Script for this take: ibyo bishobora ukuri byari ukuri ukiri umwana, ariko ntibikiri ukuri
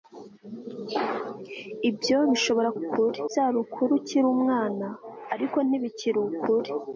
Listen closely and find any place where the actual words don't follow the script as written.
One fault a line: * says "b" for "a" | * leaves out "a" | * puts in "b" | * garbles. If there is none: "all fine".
all fine